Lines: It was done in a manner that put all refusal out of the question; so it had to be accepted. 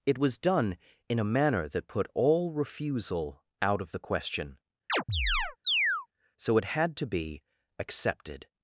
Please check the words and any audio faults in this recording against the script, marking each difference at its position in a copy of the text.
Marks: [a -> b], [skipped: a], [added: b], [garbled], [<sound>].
It was done in a manner that put all refusal out of the question; [chirp] so it had to be accepted.